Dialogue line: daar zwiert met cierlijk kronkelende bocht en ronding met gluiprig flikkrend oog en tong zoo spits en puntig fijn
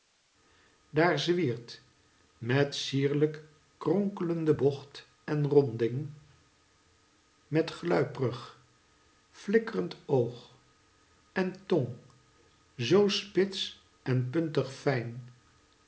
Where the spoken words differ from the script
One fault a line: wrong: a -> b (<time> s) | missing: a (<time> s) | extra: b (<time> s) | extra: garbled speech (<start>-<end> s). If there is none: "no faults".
no faults